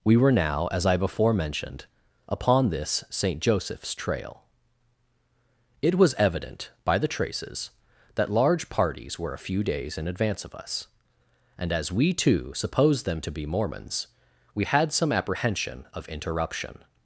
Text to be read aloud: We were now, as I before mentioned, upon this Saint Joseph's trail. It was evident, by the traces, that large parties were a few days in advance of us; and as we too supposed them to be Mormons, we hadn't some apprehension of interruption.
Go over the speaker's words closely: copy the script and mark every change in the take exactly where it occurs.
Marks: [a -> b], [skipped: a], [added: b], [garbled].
We were now, as I before mentioned, upon this Saint Joseph's trail. It was evident, by the traces, that large parties were a few days in advance of us; and as we too supposed them to be Mormons, we [hadn't -> had] some apprehension of interruption.